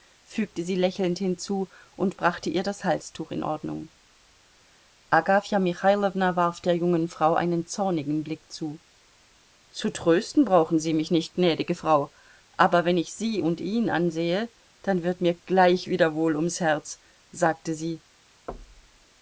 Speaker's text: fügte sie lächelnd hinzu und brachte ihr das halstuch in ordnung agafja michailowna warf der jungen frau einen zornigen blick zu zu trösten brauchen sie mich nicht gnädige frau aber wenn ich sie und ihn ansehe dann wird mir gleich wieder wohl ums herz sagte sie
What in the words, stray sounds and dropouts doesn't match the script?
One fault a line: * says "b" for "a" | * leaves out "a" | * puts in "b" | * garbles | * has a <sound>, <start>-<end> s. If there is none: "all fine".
* has a thud, 18.5-19.1 s